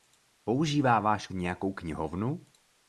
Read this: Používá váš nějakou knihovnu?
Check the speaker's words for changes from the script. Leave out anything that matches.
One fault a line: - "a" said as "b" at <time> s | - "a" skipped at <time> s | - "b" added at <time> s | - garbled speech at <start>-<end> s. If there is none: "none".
none